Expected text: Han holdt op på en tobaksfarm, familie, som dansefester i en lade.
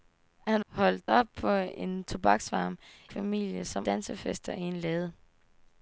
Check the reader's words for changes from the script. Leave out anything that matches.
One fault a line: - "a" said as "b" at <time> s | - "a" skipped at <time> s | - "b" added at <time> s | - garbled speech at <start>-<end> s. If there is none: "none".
none